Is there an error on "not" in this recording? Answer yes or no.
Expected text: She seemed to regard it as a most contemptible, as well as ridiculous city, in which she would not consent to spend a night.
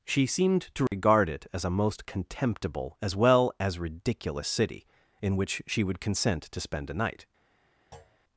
yes